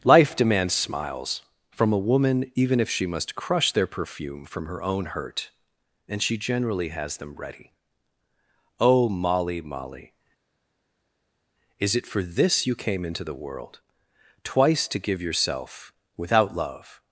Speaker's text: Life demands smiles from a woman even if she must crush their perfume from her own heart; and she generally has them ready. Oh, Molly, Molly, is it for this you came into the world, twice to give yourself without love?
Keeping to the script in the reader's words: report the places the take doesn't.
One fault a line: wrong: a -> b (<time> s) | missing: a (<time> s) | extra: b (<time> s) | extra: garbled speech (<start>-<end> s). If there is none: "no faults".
wrong: heart -> hurt (5.0 s)